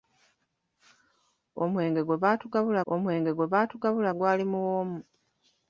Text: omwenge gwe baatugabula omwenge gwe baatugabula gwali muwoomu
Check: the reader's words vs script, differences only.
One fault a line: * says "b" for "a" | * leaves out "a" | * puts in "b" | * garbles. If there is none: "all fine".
all fine